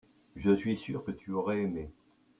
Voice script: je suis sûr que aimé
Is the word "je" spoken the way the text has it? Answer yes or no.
yes